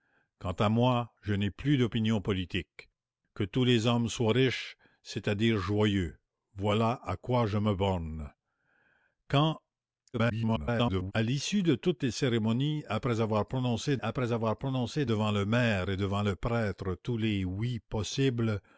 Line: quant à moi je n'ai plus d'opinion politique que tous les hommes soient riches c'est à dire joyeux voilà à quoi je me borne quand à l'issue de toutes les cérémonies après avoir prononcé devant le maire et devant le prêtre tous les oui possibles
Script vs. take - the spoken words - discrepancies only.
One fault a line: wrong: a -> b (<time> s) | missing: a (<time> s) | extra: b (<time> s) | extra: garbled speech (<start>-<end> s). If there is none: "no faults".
extra: garbled speech (10.1-11.1 s)
extra: après avoir prononcé (14.0 s)